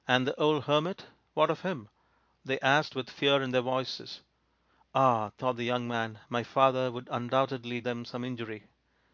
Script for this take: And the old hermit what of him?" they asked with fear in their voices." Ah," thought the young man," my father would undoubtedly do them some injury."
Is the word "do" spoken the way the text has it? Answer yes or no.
no